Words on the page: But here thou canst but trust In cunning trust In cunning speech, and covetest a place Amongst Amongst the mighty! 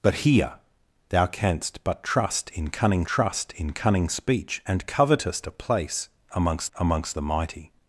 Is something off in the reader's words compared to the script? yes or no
no